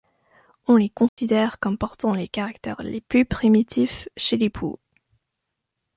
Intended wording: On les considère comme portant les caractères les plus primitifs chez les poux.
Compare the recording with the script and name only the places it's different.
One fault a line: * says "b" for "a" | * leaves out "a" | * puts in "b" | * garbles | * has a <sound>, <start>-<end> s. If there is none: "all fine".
* has a dropout, 1.1-1.2 s